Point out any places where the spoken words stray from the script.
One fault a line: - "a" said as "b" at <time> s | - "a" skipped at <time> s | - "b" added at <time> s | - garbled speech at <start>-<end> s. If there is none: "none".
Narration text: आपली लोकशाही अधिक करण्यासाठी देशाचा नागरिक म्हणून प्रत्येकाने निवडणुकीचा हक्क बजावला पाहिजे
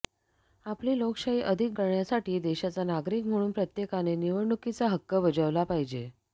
none